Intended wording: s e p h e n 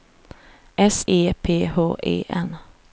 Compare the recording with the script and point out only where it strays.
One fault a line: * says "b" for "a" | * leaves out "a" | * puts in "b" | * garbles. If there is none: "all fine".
all fine